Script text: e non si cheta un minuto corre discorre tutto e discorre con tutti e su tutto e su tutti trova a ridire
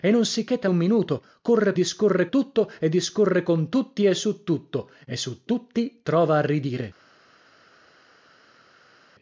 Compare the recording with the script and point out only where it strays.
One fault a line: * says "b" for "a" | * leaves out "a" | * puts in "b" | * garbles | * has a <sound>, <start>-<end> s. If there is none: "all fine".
all fine